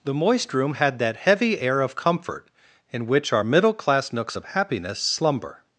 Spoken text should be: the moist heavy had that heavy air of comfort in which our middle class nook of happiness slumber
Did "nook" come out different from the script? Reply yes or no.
yes